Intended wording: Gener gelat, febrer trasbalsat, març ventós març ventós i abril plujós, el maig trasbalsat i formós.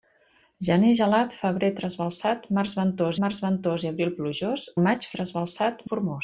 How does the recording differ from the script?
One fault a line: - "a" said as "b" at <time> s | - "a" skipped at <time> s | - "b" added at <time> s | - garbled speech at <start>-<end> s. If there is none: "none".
none